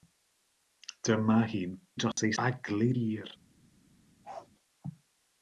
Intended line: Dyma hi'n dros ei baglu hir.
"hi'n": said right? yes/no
yes